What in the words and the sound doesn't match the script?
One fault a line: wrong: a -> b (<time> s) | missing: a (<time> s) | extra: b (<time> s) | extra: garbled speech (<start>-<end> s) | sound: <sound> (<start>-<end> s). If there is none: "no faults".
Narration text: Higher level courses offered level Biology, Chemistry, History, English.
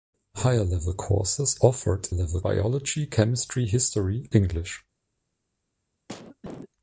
sound: cough (6.1-6.7 s)